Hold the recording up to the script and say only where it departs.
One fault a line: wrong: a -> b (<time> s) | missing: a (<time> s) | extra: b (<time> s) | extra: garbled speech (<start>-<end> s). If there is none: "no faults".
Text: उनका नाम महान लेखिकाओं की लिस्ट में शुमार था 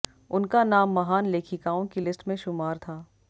no faults